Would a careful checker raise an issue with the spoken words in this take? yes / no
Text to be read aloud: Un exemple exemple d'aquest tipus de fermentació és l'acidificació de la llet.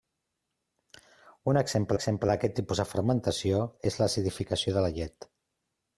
no